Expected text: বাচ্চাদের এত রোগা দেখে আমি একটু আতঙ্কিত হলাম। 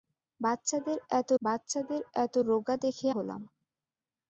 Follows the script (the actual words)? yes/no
no